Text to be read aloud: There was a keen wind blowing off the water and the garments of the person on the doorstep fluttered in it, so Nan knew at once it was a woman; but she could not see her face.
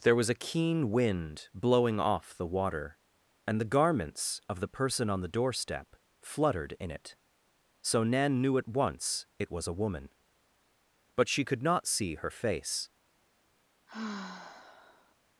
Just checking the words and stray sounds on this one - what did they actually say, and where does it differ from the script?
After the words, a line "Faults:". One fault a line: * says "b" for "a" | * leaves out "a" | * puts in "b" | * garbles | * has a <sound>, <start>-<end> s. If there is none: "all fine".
There was a keen wind blowing off the water and the garments of the person on the doorstep fluttered in it, so Nan knew at once it was a woman; but she could not see her face.
Faults:
* has a sigh, 13.9-15.2 s